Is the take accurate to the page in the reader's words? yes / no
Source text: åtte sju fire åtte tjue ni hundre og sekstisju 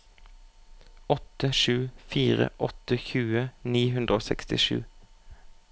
yes